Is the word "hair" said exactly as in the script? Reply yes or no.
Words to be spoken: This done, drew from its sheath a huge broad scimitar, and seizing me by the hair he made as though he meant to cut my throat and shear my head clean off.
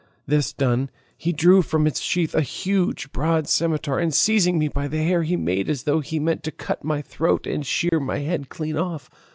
yes